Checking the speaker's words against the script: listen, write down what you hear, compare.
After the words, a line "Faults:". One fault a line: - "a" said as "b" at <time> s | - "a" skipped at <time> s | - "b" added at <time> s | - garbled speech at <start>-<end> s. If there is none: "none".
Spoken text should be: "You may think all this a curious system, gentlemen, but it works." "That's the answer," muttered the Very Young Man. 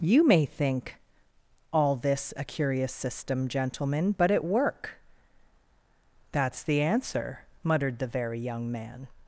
"You may think all this a curious system, gentlemen, but it work." "That's the answer," muttered the Very Young Man.
Faults:
- "works" said as "work" at 4.4 s